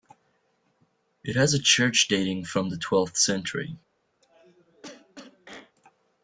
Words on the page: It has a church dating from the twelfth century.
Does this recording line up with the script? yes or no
yes